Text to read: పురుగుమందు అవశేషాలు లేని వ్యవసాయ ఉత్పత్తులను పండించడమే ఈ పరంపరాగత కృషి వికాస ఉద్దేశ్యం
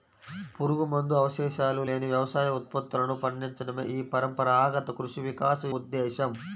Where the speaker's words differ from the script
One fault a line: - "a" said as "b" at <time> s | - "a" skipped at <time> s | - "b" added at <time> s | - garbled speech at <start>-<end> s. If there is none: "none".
none